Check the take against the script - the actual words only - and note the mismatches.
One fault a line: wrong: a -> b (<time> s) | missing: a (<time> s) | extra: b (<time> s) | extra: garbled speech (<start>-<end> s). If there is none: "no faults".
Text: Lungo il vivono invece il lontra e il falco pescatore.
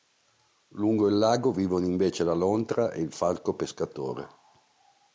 extra: lago (1.2 s)
wrong: il -> la (2.2 s)